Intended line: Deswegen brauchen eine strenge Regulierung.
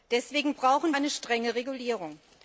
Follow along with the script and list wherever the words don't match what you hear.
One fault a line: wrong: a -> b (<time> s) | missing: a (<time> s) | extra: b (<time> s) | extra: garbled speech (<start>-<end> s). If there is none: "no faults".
no faults